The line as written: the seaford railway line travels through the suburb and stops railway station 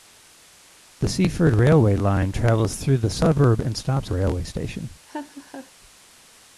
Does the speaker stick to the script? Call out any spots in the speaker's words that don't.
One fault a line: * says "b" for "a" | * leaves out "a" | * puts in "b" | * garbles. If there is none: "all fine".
all fine